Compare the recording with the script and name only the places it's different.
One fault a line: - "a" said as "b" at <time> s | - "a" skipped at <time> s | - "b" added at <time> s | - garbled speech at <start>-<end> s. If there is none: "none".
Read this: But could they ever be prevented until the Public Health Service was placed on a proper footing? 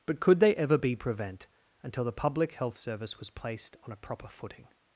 - "prevented" said as "prevent" at 1.0 s